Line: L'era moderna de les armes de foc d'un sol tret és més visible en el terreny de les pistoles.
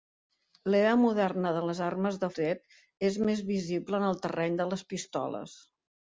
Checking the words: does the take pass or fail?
fail